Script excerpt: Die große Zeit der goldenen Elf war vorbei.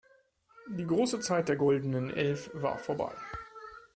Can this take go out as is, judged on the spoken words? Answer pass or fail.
pass